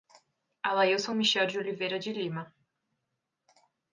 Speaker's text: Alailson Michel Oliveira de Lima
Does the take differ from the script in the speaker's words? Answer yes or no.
yes